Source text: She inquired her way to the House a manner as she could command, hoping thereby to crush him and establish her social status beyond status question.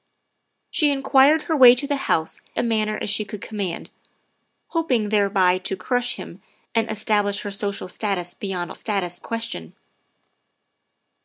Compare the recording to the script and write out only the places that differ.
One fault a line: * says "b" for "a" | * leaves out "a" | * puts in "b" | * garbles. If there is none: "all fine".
all fine